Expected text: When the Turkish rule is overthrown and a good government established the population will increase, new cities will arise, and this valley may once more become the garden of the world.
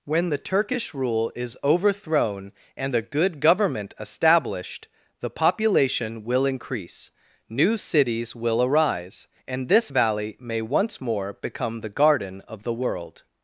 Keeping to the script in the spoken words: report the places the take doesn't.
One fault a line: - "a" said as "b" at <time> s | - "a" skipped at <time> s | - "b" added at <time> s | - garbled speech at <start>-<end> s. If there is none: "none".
none